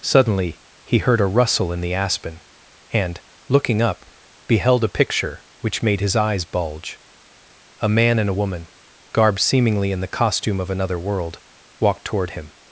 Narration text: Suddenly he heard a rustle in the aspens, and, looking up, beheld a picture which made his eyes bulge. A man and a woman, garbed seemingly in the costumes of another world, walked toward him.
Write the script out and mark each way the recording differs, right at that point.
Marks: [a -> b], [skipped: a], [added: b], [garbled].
Suddenly he heard a rustle in the [aspens, -> aspen] and, looking up, beheld a picture which made his eyes bulge. A man and a woman, garbed seemingly in the [costumes -> costume] of another world, walked toward him.